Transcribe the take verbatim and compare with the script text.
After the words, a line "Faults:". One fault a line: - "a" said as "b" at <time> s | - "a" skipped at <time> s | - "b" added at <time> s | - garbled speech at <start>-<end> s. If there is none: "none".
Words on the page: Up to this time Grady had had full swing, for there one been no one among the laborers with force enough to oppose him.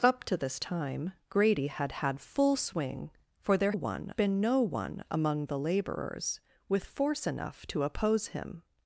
Up to this time Grady had had full swing, for there one been no one among the laborers with force enough to oppose him.
Faults:
none